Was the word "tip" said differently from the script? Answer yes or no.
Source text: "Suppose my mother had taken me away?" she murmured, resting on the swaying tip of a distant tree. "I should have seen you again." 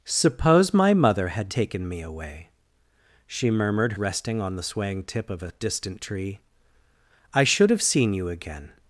no